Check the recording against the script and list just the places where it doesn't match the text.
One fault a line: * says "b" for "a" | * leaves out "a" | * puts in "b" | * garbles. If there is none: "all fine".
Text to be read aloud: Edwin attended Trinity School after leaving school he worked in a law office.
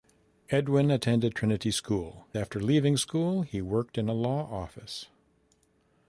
all fine